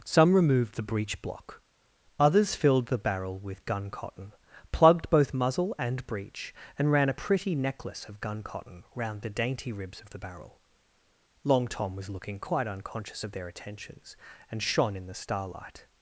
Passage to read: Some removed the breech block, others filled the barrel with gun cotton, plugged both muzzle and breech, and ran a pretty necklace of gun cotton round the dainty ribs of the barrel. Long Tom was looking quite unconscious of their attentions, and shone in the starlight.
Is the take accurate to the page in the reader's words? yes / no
yes